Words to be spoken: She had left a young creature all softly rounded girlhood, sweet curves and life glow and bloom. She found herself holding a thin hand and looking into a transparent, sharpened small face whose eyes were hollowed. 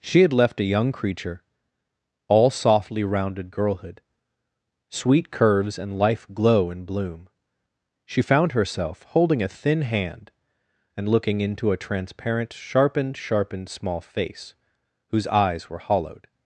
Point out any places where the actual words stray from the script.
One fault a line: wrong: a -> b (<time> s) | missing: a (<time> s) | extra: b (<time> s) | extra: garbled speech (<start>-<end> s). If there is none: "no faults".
extra: sharpened (13.2 s)